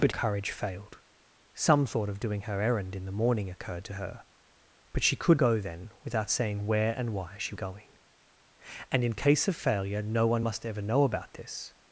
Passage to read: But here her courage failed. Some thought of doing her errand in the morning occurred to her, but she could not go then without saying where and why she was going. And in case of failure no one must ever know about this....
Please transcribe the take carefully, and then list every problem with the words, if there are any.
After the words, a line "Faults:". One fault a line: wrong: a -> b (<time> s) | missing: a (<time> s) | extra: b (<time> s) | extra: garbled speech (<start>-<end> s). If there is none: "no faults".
But courage failed. Some thought of doing her errand in the morning occurred to her, but she could go then without saying where and why she going. And in case of failure no one must ever know about this....
Faults:
missing: here her (0.1 s)
missing: not (5.4 s)
missing: was (7.6 s)